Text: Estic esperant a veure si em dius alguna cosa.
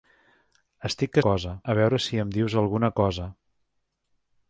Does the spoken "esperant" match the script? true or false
false